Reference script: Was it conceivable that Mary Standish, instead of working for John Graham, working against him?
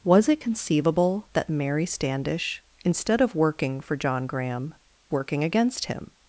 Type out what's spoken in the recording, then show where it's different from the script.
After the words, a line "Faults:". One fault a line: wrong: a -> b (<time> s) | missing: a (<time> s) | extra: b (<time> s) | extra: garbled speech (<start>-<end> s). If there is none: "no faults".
Was it conceivable that Mary Standish, instead of working for John Graham, working against him?
Faults:
no faults